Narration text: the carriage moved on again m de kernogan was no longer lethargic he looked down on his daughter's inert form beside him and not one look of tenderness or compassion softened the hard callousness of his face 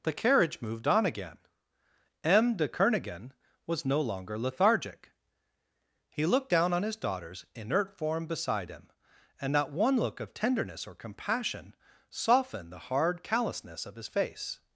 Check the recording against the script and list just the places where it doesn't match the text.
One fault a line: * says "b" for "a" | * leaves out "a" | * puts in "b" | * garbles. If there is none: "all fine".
all fine